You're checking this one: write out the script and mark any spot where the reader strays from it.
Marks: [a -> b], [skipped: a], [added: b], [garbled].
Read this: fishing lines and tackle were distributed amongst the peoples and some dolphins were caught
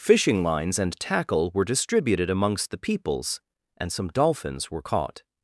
fishing lines and tackle were distributed amongst the peoples and some dolphins were caught